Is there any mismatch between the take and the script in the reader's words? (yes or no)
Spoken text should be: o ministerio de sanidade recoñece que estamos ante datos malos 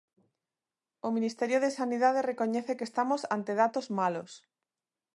no